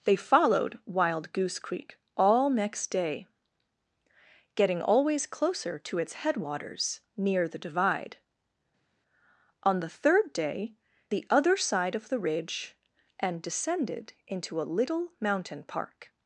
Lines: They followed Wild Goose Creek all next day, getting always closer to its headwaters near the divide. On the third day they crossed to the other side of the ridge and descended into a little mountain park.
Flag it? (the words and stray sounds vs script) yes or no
yes